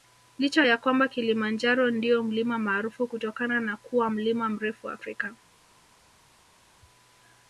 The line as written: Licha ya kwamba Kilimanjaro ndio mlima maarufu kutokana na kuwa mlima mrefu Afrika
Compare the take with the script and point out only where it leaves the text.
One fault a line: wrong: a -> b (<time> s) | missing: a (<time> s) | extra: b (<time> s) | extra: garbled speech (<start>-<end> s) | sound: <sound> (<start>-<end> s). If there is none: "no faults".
no faults